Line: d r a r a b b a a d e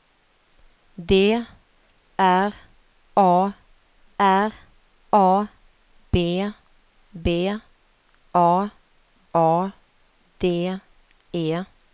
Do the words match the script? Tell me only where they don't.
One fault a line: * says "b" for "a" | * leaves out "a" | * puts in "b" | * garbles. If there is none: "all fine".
all fine